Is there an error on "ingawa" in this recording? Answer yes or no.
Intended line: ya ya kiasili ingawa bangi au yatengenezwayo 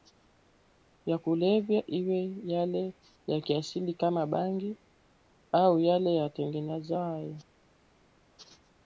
yes